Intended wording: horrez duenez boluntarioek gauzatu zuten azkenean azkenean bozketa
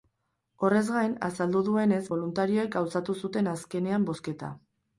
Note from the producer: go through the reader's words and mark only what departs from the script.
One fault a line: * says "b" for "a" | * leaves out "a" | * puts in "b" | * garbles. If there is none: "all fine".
* puts in "gain azaldu"
* leaves out "azkenean"